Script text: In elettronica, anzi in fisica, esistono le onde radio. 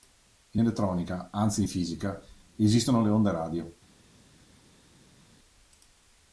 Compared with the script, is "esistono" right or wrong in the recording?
right